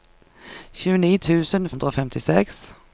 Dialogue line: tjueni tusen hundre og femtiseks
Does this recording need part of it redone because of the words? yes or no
no